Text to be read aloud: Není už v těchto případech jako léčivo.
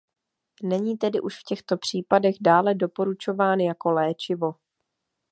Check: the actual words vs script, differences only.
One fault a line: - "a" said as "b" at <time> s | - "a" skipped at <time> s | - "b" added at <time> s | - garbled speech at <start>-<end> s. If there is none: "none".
- "tedy" added at 1.0 s
- "dále doporučován" added at 2.4 s